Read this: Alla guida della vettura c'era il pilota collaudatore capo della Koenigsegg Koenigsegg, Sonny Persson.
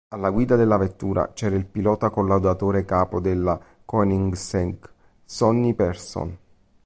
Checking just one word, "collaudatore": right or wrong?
right